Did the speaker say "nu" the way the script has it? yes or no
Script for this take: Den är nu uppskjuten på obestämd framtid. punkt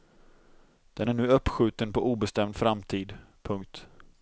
yes